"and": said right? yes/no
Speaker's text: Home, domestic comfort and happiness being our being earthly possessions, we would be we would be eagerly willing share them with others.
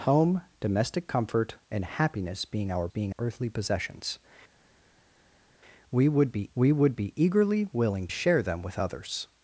yes